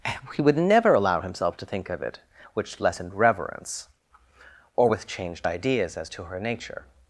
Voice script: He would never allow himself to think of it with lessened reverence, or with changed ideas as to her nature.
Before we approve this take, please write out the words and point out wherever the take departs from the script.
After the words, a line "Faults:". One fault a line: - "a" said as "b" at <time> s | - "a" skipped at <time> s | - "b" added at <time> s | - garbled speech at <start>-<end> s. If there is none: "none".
He would never allow himself to think of it which lessened reverence, or with changed ideas as to her nature.
Faults:
- "with" said as "which" at 2.5 s